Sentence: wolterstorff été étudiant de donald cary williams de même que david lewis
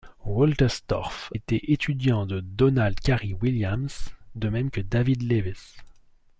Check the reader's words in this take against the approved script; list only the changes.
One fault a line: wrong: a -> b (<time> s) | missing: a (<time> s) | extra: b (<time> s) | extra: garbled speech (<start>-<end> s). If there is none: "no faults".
no faults